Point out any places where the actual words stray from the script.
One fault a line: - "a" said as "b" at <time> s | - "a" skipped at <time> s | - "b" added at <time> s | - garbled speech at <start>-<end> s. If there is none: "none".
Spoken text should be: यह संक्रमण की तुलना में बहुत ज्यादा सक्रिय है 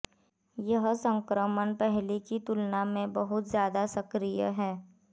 - "पहले" added at 1.8 s